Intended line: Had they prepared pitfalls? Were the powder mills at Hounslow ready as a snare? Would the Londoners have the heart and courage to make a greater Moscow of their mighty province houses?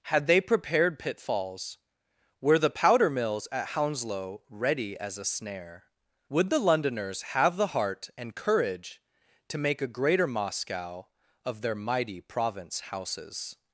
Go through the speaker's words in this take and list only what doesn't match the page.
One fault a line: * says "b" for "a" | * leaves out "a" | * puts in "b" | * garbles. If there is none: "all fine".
all fine